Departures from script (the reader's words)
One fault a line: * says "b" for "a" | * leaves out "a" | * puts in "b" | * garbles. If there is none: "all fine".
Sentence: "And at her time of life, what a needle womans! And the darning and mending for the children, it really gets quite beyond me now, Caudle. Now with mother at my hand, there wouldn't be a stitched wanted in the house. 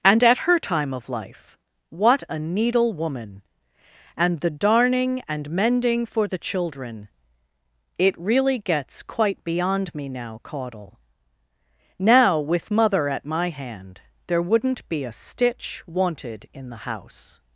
* says "woman" for "womans"
* says "stitch" for "stitched"